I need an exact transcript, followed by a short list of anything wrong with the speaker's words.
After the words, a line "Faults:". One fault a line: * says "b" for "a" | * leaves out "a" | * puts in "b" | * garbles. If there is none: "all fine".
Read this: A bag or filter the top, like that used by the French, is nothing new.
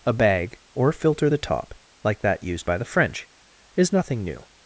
A bag or filter the top, like that used by the French, is nothing new.
Faults:
all fine